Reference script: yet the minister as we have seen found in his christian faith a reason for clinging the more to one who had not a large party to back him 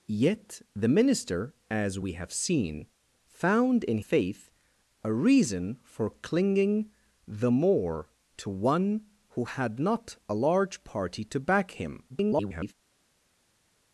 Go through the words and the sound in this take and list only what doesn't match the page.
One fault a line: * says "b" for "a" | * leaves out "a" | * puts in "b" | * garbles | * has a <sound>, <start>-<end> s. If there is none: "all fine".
* leaves out "his christian"
* garbles